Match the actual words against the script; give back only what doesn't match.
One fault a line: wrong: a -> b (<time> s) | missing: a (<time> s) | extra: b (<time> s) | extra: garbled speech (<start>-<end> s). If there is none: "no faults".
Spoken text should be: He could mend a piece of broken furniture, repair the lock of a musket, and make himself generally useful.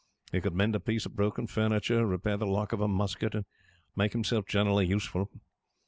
no faults